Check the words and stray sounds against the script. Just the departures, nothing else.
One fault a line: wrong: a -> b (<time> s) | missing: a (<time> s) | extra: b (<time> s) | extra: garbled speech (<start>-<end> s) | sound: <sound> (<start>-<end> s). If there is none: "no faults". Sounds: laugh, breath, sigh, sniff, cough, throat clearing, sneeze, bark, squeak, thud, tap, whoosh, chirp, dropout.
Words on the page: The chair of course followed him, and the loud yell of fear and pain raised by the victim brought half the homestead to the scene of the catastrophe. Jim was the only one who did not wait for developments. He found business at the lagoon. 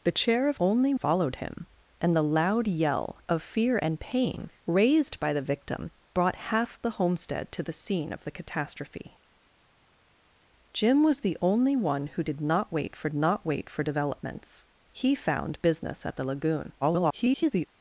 wrong: course -> only (0.6 s)
extra: not wait for (13.1 s)
extra: garbled speech (16.8-17.7 s)